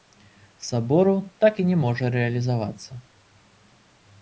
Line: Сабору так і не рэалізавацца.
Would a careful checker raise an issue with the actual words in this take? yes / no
yes